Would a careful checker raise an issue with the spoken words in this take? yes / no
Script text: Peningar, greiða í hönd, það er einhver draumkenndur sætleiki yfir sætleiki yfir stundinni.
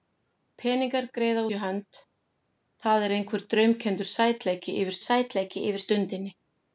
no